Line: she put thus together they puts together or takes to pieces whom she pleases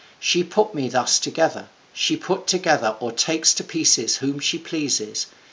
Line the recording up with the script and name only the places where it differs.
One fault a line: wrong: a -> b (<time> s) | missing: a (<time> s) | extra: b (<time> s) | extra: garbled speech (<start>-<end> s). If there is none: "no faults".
extra: me (0.7 s)
wrong: they -> she (1.9 s)